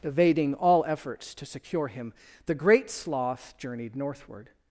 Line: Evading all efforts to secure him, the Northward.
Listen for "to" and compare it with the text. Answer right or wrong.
right